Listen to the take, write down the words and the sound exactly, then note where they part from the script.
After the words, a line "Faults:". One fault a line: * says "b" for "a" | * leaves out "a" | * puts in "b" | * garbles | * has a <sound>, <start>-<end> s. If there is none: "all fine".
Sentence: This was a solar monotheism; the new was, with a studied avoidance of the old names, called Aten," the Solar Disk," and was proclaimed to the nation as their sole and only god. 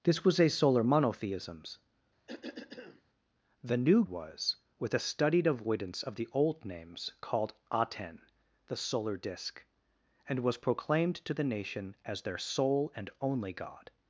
This was a solar monotheism; the new was, with a studied avoidance of the old names, called Aten," the Solar Disk," and was proclaimed to the nation as their sole and only god.
Faults:
* has a cough, 2.3-3.0 s